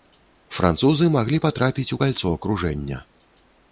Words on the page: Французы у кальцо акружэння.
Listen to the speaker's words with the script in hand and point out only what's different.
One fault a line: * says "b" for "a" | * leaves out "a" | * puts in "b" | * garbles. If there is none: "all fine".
* puts in "маглі патрапіць"